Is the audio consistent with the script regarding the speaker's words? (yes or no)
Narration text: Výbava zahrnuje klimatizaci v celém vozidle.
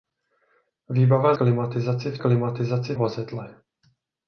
no